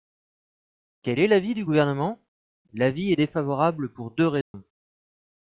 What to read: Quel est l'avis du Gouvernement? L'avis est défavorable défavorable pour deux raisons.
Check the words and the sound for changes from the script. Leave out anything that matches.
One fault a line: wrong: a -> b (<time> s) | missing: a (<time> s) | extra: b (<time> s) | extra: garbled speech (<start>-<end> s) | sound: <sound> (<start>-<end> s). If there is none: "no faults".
missing: défavorable (3.9 s)
sound: dropout (4.4-4.5 s)